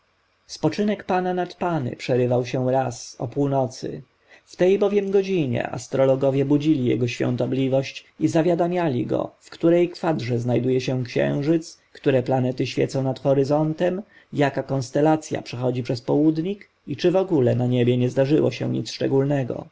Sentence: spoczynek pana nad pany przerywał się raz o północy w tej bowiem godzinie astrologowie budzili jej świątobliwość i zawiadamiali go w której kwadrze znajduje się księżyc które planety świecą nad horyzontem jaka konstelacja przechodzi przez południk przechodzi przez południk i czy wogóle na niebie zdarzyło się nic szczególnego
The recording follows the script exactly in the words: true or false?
false